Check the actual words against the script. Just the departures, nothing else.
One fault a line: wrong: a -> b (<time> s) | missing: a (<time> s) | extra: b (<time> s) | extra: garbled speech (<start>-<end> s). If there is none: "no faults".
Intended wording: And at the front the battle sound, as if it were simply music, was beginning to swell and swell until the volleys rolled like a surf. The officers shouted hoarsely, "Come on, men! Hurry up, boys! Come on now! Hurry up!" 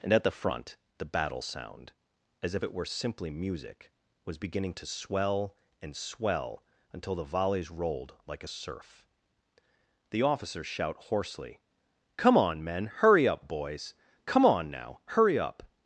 wrong: shouted -> shout (10.7 s)